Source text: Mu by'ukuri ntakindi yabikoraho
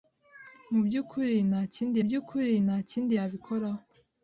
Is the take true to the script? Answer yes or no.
no